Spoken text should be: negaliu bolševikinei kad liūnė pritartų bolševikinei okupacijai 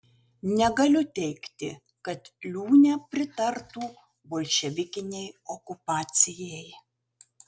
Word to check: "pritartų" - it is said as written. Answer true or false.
true